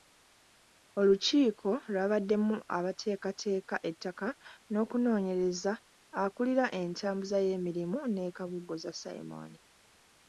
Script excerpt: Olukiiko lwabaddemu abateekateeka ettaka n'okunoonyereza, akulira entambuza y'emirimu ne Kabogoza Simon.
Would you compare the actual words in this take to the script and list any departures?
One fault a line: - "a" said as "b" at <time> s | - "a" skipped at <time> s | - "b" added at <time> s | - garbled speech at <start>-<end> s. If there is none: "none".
none